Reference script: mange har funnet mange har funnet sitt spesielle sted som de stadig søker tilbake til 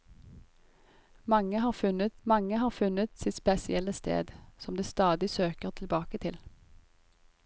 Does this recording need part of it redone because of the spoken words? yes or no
no